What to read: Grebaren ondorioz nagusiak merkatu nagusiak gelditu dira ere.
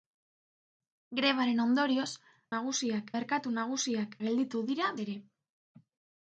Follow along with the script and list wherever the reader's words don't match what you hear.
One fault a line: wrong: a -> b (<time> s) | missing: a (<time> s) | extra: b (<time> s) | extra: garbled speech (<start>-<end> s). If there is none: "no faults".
no faults